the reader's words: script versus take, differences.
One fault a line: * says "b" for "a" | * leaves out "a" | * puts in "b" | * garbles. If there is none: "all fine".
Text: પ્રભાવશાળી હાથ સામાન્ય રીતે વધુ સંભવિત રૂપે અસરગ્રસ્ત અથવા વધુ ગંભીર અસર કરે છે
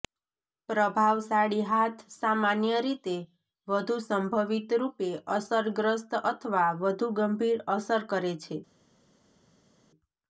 all fine